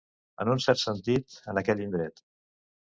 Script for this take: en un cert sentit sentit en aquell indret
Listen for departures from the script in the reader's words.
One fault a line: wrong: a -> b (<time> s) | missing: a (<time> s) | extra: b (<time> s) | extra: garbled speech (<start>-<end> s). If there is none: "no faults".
missing: sentit (1.4 s)